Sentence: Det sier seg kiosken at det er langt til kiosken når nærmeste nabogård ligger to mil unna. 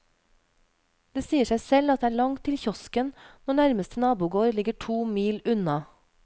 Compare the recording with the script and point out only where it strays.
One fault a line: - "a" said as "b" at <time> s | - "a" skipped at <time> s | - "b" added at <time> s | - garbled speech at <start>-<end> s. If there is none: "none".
- "kiosken" said as "selv" at 1.6 s